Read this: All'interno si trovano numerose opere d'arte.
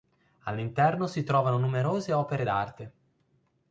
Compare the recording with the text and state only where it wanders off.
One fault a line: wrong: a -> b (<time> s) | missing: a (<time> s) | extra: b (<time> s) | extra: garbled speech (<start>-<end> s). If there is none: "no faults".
no faults